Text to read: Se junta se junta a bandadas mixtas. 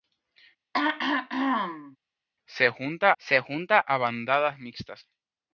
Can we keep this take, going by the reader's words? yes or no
yes